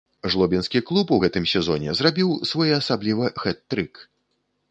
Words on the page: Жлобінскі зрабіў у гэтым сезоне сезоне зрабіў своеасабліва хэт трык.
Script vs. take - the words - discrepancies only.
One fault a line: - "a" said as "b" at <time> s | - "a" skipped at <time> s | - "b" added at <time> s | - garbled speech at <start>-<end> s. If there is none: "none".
- "зрабіў" said as "клуб" at 0.9 s
- "сезоне" skipped at 2.0 s